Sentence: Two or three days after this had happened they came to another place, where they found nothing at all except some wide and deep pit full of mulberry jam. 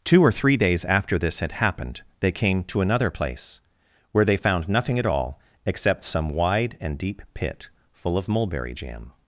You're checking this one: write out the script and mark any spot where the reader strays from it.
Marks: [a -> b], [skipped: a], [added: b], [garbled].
Two or three days after this had happened they came to another place, where they found nothing at all except some wide and deep pit full of mulberry jam.